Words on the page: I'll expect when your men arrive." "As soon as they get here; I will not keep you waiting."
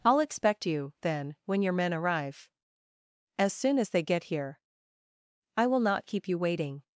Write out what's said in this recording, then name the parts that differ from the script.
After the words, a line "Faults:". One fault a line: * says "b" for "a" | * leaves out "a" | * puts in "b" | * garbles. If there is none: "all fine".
I'll expect you, then, when your men arrive." "As soon as they get here; I will not keep you waiting."
Faults:
* puts in "you then"